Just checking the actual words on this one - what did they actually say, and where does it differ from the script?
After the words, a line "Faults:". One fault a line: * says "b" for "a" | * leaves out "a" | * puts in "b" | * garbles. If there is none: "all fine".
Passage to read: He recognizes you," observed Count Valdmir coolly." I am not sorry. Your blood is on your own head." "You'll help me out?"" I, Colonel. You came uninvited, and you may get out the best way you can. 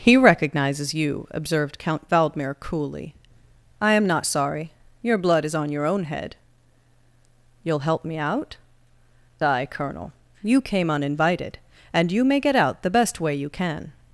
He recognizes you," observed Count Valdmir coolly." I am not sorry. Your blood is on your own head." "You'll help me out?"" I, Colonel. You came uninvited, and you may get out the best way you can.
Faults:
all fine